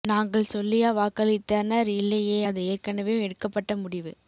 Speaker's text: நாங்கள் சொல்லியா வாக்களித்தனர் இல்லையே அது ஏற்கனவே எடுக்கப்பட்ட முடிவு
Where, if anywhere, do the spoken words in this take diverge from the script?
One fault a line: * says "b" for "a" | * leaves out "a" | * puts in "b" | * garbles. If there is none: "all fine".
all fine